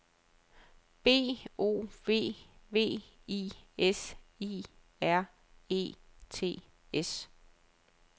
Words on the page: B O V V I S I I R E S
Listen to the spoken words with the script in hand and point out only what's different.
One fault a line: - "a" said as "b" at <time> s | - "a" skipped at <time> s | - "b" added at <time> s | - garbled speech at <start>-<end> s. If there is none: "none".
- "I" skipped at 4.6 s
- "T" added at 6.3 s